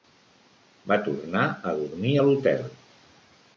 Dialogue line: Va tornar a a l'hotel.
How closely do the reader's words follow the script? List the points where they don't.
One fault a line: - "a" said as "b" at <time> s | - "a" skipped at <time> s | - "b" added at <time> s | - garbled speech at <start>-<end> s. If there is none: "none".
- "dormir" added at 1.8 s